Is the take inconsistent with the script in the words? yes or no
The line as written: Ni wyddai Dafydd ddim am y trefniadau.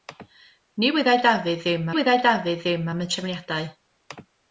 yes